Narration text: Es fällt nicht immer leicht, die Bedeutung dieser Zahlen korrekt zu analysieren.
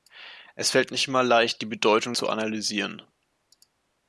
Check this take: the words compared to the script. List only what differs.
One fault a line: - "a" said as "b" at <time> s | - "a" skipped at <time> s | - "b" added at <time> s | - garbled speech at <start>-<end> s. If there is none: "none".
- "dieser Zahlen korrekt" skipped at 2.1 s